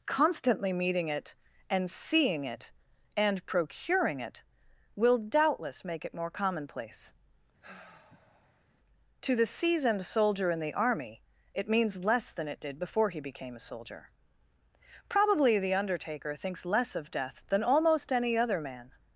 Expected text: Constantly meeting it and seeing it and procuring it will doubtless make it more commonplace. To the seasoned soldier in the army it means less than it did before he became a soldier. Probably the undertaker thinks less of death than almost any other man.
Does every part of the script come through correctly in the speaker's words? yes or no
yes